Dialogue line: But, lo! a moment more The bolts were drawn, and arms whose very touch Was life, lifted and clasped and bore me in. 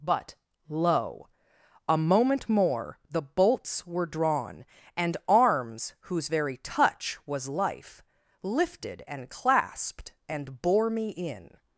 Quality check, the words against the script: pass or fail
pass